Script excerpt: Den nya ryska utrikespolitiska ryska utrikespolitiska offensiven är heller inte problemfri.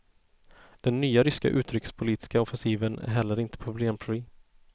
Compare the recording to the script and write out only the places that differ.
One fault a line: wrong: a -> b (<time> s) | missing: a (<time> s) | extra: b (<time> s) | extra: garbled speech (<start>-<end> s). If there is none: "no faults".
missing: ryska utrikespolitiska (2.4 s)